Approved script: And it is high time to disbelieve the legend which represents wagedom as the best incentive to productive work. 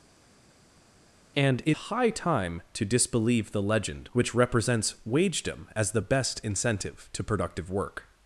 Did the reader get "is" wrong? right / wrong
wrong